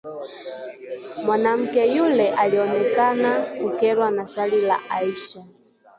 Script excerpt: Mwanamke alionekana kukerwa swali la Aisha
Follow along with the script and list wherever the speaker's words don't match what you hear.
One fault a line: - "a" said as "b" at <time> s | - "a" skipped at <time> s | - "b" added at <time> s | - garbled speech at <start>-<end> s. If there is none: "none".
- "yule" added at 1.9 s
- "na" added at 4.1 s